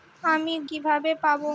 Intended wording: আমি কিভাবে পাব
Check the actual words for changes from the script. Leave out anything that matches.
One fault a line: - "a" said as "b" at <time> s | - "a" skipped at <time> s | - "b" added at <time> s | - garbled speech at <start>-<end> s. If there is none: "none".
none